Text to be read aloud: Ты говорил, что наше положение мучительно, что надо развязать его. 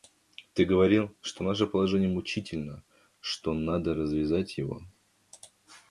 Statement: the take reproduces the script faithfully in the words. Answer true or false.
true